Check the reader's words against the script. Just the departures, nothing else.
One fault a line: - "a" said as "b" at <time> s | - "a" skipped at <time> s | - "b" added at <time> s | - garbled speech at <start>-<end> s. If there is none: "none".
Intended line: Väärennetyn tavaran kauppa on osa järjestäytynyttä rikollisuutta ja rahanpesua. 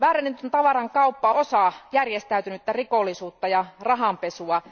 - "on" skipped at 1.3 s